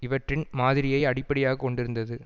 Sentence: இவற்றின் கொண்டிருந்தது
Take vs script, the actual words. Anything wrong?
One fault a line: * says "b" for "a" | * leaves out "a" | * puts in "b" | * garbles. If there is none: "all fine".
* puts in "மாதிரியை அடிப்படையாக"